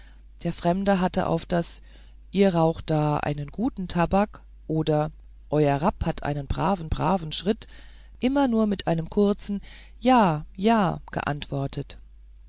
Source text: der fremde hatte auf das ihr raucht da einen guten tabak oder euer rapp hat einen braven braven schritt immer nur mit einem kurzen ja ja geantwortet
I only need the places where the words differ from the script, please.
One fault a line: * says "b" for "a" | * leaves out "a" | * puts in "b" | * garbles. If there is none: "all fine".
all fine